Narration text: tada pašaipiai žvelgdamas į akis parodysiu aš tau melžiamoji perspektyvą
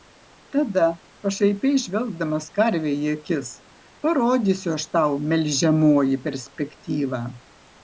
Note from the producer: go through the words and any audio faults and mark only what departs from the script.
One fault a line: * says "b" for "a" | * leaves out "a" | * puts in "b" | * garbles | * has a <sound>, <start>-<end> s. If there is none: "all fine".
* puts in "karvei"